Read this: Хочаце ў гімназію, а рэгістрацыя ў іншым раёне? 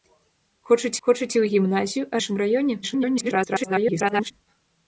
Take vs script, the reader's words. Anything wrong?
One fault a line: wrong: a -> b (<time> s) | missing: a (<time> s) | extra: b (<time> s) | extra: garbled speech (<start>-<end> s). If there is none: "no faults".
extra: хочаце (1.1 s)
missing: рэгістрацыя ў (2.2 s)
extra: garbled speech (2.8-4.3 s)